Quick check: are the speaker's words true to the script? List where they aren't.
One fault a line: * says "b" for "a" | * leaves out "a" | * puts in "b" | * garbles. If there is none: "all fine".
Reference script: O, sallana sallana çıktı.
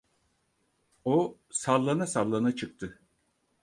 all fine